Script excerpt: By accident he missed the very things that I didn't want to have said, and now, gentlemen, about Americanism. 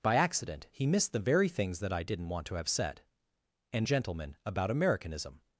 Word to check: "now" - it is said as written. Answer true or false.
false